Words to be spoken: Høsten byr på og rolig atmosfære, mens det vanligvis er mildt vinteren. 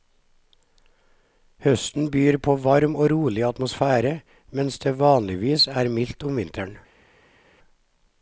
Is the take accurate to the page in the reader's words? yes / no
no